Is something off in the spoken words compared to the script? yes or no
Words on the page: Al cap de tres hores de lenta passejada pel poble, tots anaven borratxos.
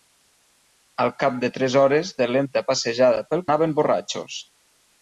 yes